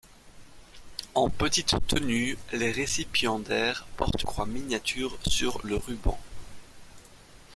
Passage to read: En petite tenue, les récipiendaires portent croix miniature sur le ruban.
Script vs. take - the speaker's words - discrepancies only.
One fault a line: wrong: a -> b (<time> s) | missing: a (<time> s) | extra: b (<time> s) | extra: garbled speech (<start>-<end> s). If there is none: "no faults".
no faults